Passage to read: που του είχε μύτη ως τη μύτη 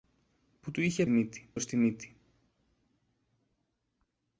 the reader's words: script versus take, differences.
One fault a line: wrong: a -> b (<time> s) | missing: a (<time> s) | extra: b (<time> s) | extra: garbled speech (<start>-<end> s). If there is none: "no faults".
no faults